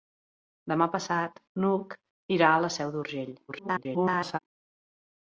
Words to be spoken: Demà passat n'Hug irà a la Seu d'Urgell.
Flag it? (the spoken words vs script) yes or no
yes